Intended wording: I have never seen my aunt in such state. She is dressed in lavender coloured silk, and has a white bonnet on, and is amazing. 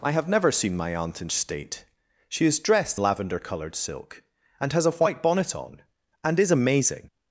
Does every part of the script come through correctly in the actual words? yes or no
no